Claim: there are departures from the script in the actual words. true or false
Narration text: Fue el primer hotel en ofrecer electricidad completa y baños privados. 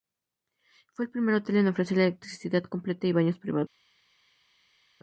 false